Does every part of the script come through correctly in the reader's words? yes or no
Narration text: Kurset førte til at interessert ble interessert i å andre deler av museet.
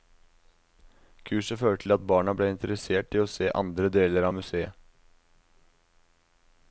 no